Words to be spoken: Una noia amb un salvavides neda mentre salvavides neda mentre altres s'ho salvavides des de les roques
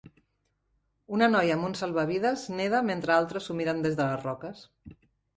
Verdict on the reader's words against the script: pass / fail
fail